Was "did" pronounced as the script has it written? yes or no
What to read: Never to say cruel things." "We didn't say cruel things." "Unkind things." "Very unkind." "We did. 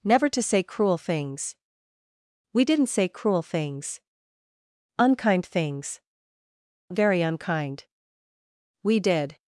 yes